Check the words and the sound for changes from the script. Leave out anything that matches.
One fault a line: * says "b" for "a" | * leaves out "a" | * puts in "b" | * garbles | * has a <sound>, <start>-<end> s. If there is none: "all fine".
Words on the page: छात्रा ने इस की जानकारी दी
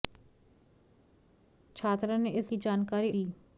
all fine